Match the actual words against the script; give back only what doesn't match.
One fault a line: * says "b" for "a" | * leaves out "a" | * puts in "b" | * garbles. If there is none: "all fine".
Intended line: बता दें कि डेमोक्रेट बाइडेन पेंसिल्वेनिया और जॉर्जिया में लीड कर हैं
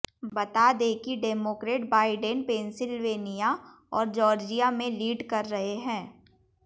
* puts in "रहे"